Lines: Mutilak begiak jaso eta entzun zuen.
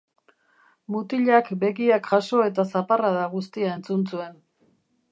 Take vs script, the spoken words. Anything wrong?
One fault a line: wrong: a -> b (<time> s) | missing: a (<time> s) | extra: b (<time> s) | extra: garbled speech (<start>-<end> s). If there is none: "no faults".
extra: zaparrada guztia (2.7 s)